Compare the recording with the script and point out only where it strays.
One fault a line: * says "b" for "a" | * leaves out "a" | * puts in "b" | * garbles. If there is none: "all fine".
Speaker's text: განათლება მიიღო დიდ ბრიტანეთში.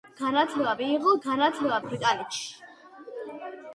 * says "განათლება" for "დიდ"